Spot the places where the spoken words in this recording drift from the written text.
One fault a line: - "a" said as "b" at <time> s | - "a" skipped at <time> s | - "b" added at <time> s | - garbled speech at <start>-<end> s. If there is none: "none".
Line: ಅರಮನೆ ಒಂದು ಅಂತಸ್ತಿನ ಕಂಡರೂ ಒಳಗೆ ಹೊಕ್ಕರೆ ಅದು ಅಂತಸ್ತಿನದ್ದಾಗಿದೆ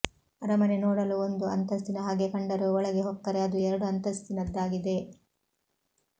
- "ನೋಡಲು" added at 0.8 s
- "ಹಾಗೆ" added at 2.0 s
- "ಎರಡು" added at 3.7 s